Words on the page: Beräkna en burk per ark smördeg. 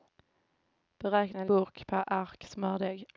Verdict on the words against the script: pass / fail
pass